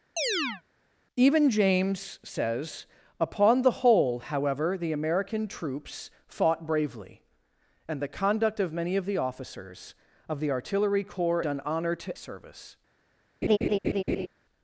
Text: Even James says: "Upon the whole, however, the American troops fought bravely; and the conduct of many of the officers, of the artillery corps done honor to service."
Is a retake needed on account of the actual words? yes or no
no